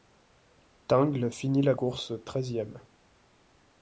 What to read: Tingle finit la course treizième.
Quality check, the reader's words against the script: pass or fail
pass